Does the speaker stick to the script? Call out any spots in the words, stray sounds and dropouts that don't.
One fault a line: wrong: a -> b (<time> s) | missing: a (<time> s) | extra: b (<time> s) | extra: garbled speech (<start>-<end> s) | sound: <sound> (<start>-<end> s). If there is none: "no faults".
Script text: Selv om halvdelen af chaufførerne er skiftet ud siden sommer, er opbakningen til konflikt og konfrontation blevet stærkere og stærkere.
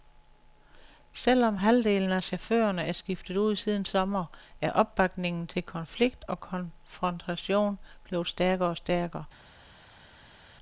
no faults